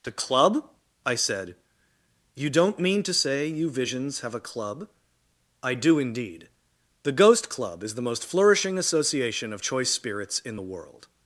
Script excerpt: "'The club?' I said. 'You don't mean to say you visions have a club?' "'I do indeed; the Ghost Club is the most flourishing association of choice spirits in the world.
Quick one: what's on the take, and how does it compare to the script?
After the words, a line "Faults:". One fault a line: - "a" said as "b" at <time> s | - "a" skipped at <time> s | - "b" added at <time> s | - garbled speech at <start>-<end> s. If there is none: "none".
"'The club?' I said. 'You don't mean to say you visions have a club?' "'I do indeed; the Ghost Club is the most flourishing association of choice spirits in the world.
Faults:
none